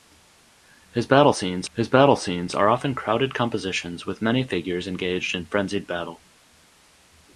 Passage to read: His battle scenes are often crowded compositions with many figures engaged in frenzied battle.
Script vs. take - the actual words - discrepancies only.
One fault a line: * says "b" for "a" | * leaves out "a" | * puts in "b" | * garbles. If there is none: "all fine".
* puts in "his battle scenes"